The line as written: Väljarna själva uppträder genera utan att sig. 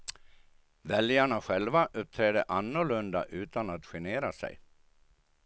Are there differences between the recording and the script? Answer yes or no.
yes